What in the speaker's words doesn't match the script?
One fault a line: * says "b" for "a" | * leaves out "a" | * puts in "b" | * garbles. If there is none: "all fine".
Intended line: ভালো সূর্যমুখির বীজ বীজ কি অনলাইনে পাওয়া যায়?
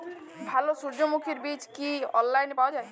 * leaves out "বীজ"